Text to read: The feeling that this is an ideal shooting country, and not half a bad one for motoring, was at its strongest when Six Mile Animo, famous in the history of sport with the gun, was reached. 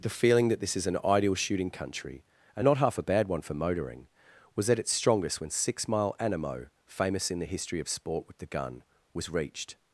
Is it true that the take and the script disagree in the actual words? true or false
false